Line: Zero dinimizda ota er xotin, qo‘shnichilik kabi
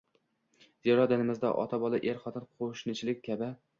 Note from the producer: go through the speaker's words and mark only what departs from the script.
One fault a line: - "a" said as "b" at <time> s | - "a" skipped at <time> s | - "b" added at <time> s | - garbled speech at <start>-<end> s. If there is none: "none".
- "bola" added at 1.8 s